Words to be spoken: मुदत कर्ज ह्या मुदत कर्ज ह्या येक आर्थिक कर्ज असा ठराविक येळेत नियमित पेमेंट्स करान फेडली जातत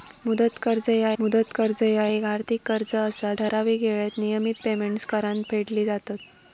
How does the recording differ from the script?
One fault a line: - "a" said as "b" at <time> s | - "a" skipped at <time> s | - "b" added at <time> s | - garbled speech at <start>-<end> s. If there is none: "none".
none